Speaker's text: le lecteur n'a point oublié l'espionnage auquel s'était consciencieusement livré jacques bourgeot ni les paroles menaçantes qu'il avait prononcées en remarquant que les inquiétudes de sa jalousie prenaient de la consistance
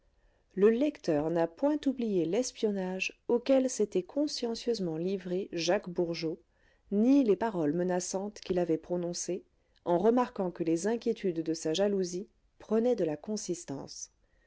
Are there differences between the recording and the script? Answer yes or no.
no